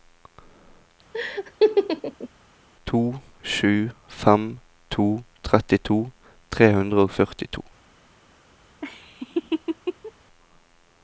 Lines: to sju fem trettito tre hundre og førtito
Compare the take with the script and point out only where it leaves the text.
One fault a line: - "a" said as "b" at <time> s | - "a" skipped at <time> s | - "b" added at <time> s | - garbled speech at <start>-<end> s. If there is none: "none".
- "to" added at 5.0 s